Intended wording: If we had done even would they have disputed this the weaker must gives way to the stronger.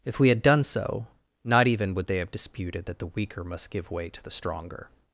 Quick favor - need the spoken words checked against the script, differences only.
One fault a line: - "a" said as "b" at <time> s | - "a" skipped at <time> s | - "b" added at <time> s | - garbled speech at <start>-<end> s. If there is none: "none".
- "so not" added at 0.6 s
- "this" said as "that" at 2.9 s
- "gives" said as "give" at 3.7 s